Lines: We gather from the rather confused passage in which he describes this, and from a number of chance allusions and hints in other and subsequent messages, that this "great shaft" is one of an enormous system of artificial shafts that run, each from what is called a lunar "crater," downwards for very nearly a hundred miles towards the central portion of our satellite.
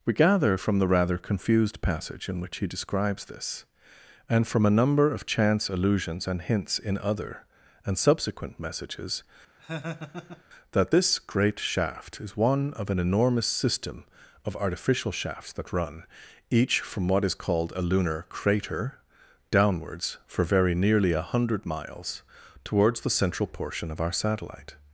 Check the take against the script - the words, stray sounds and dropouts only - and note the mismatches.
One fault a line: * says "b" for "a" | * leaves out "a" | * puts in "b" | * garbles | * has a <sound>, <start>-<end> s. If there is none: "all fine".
* has a laugh, 9.6-10.4 s